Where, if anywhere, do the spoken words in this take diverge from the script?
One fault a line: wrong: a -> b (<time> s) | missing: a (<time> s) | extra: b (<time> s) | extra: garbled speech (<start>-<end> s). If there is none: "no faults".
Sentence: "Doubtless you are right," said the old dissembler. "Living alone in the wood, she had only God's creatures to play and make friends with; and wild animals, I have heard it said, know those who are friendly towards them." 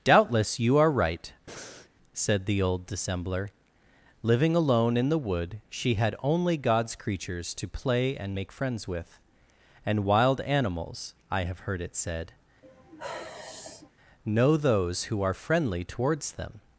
no faults